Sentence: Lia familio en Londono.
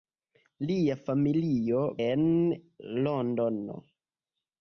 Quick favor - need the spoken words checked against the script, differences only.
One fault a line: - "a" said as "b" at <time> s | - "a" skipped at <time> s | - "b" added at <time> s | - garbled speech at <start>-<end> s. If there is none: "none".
none